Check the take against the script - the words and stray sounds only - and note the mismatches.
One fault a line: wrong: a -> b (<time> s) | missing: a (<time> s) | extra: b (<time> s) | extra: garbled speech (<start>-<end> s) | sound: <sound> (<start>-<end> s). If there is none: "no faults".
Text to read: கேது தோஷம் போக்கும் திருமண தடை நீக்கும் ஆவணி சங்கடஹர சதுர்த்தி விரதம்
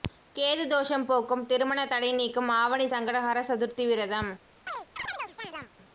sound: chirp (4.7-5.7 s)